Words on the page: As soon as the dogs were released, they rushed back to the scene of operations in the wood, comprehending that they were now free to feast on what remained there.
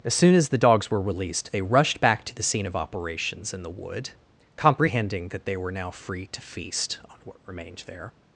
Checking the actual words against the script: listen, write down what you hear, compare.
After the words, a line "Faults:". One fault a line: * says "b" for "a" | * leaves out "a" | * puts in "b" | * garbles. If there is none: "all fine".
As soon as the dogs were released, they rushed back to the scene of operations in the wood, comprehending that they were now free to feast on what remained there.
Faults:
all fine